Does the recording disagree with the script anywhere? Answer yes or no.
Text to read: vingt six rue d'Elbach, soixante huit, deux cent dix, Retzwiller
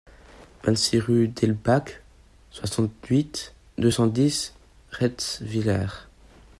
no